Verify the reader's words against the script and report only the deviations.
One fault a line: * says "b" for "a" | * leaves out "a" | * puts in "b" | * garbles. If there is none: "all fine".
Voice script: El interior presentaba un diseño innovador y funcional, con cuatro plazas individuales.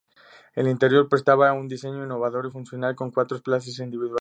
all fine